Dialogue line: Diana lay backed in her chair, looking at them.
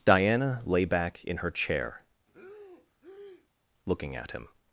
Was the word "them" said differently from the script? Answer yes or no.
yes